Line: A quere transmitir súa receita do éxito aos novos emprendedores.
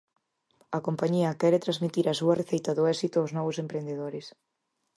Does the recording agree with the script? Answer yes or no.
no